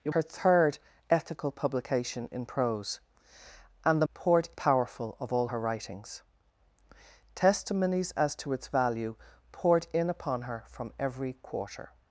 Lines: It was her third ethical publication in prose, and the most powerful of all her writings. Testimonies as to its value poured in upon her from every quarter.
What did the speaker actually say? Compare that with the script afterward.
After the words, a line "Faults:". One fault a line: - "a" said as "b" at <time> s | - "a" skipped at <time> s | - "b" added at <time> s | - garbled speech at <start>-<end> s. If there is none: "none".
It her third ethical publication in prose, and the poured powerful of all her writings. Testimonies as to its value poured in upon her from every quarter.
Faults:
- "was" skipped at 0.1 s
- "most" said as "poured" at 4.1 s